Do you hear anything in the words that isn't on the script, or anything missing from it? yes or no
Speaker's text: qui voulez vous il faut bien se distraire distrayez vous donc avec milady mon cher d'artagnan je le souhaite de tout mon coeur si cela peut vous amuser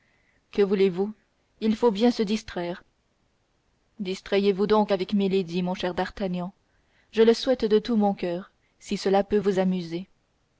yes